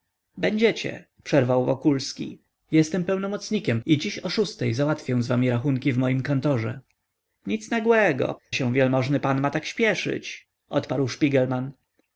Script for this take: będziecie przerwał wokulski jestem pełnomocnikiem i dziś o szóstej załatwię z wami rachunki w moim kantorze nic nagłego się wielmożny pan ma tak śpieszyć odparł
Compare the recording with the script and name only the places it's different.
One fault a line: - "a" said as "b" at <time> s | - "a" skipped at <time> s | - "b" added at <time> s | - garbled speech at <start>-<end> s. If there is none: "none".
none